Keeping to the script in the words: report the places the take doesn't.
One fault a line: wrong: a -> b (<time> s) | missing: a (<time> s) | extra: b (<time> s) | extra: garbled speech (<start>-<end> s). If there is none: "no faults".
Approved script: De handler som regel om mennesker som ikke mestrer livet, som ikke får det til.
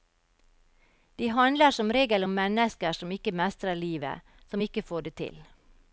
no faults